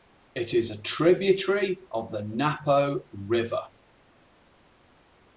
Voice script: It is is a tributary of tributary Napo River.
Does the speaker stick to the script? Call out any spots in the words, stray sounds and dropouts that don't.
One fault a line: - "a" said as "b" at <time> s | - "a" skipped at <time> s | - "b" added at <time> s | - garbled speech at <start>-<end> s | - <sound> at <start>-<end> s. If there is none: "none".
- "is" skipped at 0.7 s
- "tributary" said as "the" at 2.1 s